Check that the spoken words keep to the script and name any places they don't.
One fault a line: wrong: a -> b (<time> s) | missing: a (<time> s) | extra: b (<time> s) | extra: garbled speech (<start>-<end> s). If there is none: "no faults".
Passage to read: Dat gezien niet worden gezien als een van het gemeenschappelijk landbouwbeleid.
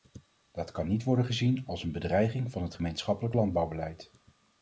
wrong: gezien -> kan (0.7 s)
extra: bedreiging (1.9 s)